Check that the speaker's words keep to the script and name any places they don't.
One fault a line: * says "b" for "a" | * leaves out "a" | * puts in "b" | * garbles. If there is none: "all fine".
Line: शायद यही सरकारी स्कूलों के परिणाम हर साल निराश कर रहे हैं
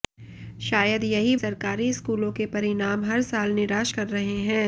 all fine